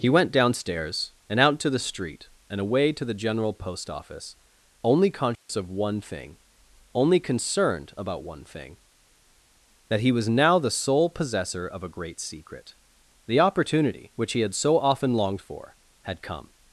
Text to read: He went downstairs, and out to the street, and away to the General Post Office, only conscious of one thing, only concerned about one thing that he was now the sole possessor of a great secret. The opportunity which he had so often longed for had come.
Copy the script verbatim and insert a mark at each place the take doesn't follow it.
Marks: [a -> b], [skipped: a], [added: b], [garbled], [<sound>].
He went downstairs, and out to the street, and away to the General Post Office, only conscious [dropout] of one thing, only concerned about one thing that he was now the sole possessor of a great secret. The opportunity which he had so often longed for had come.